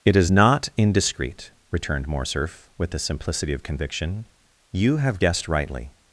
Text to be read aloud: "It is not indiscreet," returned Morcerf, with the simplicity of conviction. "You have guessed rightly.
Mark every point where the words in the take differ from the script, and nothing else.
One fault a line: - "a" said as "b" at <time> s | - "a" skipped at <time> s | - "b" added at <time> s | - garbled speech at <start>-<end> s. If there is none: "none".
none